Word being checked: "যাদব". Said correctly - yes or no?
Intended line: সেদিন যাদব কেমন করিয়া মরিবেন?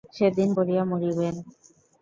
no